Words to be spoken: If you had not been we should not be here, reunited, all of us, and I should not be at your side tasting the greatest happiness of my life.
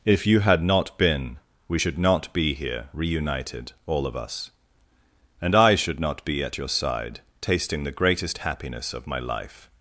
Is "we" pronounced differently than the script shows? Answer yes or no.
no